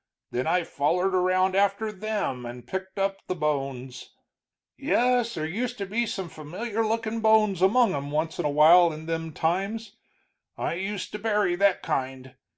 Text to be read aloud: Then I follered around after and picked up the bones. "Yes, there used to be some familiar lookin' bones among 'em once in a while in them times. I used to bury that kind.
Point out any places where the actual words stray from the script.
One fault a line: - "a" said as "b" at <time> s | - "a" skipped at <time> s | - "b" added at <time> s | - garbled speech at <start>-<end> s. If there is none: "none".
- "them" added at 1.9 s